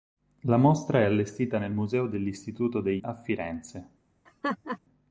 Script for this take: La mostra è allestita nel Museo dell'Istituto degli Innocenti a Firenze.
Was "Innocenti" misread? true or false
true